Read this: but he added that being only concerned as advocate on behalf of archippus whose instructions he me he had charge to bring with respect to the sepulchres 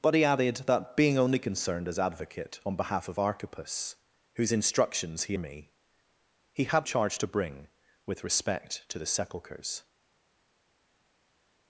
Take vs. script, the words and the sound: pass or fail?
pass